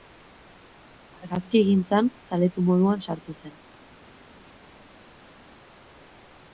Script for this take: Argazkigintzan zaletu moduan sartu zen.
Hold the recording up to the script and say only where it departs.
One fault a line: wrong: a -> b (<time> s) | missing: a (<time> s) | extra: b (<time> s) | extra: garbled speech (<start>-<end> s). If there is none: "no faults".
no faults